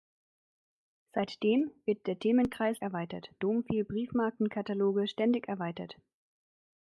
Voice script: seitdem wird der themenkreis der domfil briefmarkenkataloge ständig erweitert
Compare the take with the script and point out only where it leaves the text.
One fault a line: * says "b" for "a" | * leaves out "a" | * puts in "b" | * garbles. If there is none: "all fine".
* says "erweitert" for "der"